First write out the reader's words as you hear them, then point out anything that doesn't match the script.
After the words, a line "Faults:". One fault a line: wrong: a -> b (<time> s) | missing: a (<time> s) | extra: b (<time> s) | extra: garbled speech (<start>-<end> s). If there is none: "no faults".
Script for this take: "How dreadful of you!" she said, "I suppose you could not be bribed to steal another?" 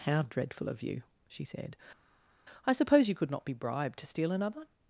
"How dreadful of you!" she said, "I suppose you could not be bribed to steal another?"
Faults:
no faults